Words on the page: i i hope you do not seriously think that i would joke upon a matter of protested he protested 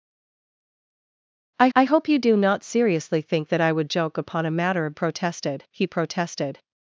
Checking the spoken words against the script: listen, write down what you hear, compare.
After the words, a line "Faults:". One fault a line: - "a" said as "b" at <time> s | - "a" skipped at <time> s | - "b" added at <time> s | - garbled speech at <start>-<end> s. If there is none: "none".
i i hope you do not seriously think that i would joke upon a matter of protested he protested
Faults:
none